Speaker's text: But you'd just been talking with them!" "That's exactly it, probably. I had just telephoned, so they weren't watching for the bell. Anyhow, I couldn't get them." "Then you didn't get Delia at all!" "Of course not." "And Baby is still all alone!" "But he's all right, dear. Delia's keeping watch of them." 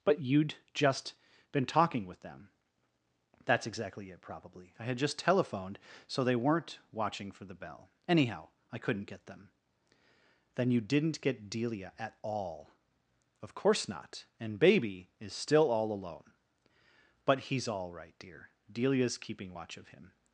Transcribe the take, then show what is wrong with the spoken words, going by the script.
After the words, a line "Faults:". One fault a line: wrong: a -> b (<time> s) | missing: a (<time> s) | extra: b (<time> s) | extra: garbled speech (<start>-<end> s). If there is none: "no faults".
But you'd just been talking with them!" "That's exactly it, probably. I had just telephoned, so they weren't watching for the bell. Anyhow, I couldn't get them." "Then you didn't get Delia at all!" "Of course not." "And Baby is still all alone!" "But he's all right, dear. Delia's keeping watch of him."
Faults:
wrong: them -> him (19.9 s)